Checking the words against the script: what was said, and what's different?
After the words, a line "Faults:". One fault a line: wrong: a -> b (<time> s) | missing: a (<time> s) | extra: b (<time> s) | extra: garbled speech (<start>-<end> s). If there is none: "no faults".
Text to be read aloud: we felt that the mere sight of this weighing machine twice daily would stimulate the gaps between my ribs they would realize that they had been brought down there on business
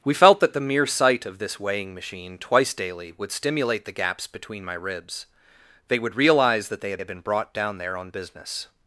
we felt that the mere sight of this weighing machine twice daily would stimulate the gaps between my ribs they would realize that they had had been brought down there on business
Faults:
extra: had (7.0 s)